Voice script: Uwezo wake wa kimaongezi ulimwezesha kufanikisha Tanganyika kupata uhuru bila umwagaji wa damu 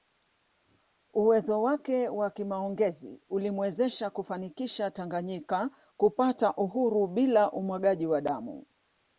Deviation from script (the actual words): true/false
false